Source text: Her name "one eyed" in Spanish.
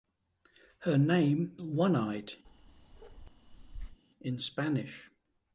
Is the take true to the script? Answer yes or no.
yes